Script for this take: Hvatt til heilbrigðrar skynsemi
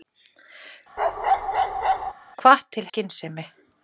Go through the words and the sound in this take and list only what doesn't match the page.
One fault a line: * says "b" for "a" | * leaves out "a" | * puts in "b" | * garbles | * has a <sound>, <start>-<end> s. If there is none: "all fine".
* has a bark, 1.0-2.1 s
* leaves out "heilbrigðrar"